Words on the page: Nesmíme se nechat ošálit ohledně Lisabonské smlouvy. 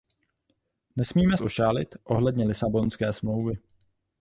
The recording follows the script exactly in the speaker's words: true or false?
false